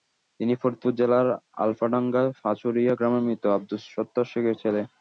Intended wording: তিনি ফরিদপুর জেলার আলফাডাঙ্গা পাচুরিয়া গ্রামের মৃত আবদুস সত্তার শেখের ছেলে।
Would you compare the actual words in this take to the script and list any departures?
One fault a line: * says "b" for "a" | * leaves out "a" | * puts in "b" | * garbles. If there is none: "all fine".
all fine